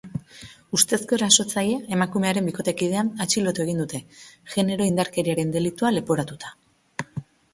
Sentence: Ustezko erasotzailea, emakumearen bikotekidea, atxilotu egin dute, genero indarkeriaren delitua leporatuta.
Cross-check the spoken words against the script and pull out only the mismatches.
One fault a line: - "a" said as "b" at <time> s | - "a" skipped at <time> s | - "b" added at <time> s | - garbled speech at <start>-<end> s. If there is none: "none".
none